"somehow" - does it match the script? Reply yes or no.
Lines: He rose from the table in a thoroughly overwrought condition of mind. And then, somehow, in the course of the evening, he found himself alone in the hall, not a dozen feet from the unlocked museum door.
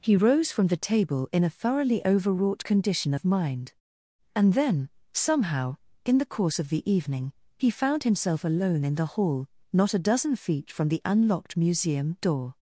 yes